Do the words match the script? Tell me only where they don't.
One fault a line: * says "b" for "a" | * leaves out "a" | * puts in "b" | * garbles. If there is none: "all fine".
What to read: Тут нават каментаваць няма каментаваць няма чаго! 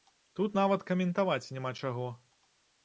* leaves out "каментаваць няма"